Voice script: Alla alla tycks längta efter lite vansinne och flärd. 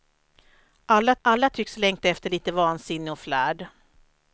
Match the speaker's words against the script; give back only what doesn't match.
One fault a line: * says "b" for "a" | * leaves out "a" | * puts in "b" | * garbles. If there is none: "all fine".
all fine